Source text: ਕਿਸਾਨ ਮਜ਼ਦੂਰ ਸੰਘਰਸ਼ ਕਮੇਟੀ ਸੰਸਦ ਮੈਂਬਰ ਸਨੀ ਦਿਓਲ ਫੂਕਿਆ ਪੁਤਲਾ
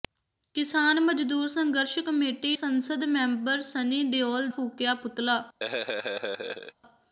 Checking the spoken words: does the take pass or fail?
pass